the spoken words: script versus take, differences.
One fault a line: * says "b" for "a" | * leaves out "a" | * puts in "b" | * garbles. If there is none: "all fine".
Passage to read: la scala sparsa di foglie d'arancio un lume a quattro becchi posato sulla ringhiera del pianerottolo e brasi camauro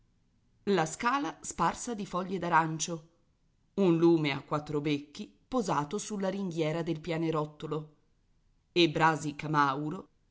all fine